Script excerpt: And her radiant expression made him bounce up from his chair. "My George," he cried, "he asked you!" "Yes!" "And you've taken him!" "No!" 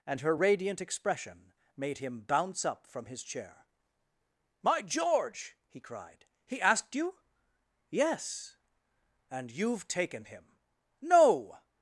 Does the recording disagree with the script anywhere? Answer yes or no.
no